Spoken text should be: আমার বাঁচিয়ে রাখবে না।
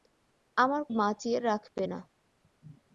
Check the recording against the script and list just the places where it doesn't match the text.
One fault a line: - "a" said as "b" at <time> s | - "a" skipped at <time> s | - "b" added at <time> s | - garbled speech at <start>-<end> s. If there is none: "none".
none